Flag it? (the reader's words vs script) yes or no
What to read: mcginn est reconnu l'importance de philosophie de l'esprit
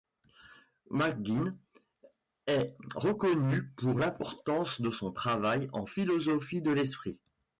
yes